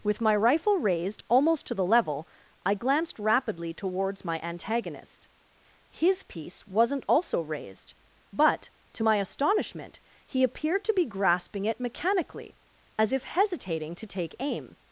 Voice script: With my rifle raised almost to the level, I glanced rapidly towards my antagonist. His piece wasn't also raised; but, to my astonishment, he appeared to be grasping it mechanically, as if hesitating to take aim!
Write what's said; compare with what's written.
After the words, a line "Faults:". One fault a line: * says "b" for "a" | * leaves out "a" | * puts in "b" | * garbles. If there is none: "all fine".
With my rifle raised almost to the level, I glanced rapidly towards my antagonist. His piece wasn't also raised; but, to my astonishment, he appeared to be grasping it mechanically, as if hesitating to take aim!
Faults:
all fine